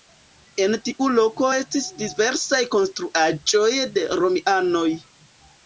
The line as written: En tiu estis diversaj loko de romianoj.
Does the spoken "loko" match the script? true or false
false